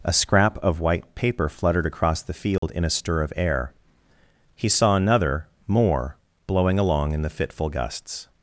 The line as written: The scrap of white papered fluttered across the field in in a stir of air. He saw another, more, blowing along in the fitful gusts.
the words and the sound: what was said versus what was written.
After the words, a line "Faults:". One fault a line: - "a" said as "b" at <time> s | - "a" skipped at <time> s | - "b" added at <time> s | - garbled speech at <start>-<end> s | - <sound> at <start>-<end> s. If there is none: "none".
A scrap of white paper fluttered across the field in a stir of air. He saw another, more, blowing along in the fitful gusts.
Faults:
- "The" said as "A" at 0.0 s
- "papered" said as "paper" at 1.1 s
- dropout at 2.6-2.6 s
- "in" skipped at 2.8 s